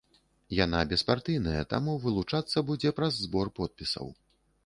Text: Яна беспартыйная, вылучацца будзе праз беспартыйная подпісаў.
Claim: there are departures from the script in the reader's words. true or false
true